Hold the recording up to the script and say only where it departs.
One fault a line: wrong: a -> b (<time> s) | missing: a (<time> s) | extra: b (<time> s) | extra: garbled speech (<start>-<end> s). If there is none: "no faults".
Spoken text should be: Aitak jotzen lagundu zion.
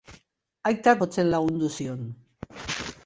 no faults